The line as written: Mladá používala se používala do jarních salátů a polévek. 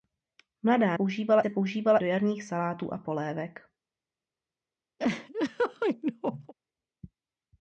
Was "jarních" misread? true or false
false